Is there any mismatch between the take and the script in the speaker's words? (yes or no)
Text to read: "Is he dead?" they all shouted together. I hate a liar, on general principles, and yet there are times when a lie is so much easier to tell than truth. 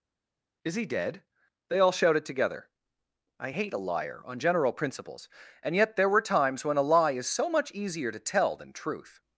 yes